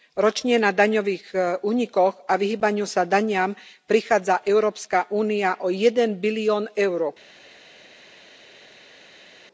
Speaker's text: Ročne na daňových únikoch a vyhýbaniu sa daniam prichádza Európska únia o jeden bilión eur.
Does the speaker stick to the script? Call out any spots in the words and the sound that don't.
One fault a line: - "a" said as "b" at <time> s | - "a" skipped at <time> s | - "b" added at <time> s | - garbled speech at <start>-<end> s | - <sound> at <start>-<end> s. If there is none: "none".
none